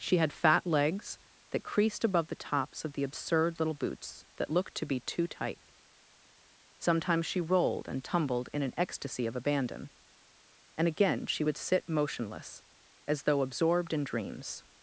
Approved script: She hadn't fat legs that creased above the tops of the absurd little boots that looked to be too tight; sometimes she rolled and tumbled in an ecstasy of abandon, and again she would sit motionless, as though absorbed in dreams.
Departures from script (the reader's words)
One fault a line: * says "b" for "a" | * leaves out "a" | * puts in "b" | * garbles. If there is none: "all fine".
* says "had" for "hadn't"